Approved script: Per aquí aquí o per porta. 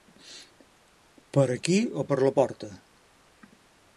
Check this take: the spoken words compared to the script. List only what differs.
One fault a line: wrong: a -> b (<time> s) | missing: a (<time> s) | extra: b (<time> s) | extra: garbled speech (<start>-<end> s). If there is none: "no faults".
missing: aquí (1.8 s)
extra: la (2.2 s)